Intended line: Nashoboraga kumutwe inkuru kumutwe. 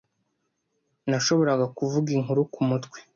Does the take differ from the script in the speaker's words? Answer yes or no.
yes